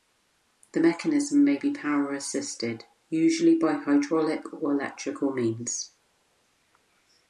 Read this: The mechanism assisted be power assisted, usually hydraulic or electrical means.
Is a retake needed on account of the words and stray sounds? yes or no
yes